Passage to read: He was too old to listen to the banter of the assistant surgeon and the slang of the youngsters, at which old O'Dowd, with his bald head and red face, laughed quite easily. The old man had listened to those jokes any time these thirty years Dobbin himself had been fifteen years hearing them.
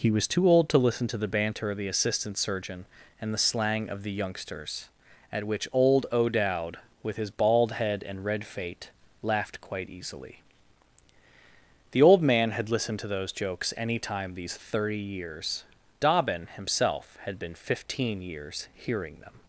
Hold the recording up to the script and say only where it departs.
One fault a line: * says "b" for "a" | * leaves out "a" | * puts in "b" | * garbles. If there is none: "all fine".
* says "fate" for "face"